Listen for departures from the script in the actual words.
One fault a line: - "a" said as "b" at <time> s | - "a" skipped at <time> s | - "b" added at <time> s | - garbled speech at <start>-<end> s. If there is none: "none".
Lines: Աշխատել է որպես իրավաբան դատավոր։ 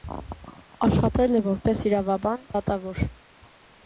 none